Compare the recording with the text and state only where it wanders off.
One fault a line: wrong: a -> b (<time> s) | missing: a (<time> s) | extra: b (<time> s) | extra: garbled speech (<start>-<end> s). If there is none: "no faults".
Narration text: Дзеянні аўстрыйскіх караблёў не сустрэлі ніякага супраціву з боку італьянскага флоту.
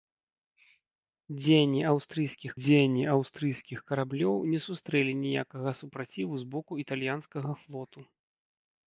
extra: дзеянні аўстрыйскіх (2.6 s)